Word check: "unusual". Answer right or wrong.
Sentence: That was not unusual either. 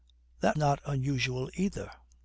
right